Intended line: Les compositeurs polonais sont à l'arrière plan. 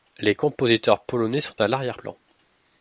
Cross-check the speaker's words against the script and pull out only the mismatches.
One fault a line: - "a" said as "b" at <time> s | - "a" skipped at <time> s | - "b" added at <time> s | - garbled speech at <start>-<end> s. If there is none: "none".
none